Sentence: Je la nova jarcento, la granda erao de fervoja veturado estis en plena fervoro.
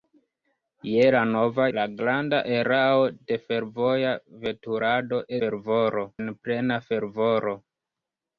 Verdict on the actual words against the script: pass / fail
fail